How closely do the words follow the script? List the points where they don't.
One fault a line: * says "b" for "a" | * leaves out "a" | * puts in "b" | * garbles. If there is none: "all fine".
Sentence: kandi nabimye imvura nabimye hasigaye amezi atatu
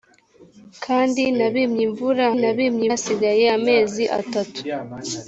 all fine